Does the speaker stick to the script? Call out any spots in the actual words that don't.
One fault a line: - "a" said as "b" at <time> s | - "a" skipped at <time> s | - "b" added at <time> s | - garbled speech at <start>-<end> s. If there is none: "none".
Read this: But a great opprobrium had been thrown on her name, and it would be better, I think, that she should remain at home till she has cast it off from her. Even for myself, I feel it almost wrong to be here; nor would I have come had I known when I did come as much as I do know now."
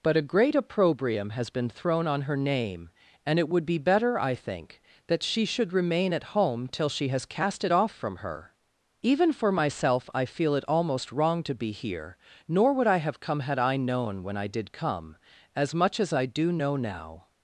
- "had" said as "has" at 1.3 s